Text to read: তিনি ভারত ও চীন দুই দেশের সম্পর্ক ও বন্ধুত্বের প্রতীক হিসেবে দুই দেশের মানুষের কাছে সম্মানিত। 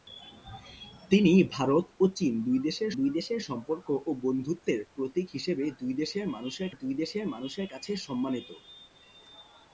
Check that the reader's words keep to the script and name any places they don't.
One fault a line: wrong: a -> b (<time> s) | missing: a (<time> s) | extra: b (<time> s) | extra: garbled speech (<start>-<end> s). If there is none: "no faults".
extra: দুই দেশের (2.9 s)
extra: দুই দেশের মানুষের (6.7 s)